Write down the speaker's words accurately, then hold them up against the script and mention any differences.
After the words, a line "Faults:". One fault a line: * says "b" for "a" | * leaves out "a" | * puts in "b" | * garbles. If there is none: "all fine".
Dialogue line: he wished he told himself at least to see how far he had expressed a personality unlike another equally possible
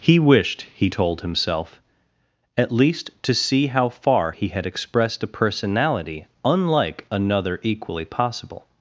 he wished he told himself at least to see how far he had expressed a personality unlike another equally possible
Faults:
all fine